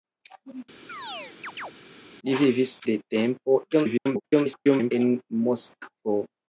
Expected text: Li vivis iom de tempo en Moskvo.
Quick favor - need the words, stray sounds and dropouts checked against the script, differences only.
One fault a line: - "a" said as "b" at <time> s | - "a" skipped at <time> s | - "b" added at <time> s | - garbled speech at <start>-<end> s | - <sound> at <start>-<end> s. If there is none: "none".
- chirp at 0.9-1.7 s
- "iom" skipped at 2.7 s
- garbled speech at 3.7-4.9 s